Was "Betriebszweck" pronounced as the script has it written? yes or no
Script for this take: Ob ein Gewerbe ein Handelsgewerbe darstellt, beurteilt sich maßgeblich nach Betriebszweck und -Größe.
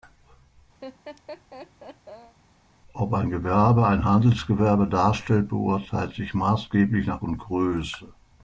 no